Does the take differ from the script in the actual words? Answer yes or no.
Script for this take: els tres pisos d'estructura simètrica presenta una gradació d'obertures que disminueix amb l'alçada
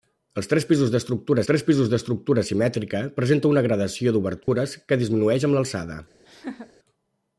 yes